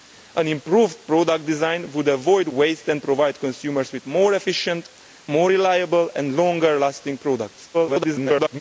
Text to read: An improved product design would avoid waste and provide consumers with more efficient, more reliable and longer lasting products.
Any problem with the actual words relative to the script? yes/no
yes